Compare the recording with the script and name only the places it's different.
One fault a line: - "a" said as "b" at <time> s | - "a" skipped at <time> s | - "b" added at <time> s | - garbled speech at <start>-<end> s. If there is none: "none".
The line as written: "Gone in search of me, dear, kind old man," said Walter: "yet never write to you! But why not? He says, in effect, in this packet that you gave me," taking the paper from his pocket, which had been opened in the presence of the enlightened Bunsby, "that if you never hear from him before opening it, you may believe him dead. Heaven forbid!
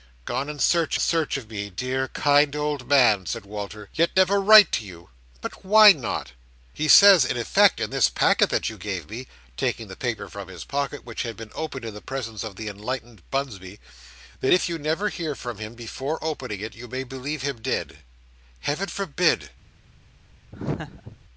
- "search" added at 1.0 s